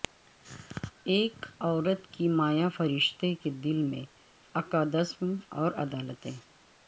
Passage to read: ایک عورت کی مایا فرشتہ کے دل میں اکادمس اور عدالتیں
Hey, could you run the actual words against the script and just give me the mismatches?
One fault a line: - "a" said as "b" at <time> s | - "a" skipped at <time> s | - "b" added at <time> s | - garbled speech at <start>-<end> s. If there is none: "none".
none